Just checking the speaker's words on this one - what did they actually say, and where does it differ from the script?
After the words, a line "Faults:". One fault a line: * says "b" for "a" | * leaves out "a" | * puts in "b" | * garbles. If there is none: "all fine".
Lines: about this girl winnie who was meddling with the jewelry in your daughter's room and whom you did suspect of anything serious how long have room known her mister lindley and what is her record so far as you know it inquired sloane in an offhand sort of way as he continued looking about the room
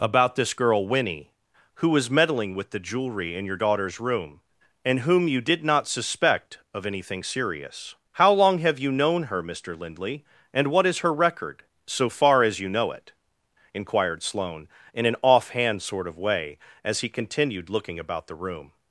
about this girl winnie who was meddling with the jewelry in your daughter's room and whom you did not suspect of anything serious how long have you known her mister lindley and what is her record so far as you know it inquired sloane in an offhand sort of way as he continued looking about the room
Faults:
* puts in "not"
* says "you" for "room"